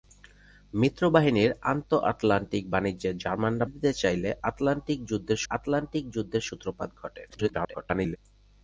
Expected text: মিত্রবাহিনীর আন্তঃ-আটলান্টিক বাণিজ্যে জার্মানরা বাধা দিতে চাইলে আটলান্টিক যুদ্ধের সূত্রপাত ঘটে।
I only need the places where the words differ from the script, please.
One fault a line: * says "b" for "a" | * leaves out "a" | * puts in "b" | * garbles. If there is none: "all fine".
* leaves out "বাধা"
* puts in "আটলান্টিক যুদ্ধের"
* garbles